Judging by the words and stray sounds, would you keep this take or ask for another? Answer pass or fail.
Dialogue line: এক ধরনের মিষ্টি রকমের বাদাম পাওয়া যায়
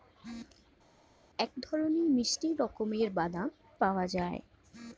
pass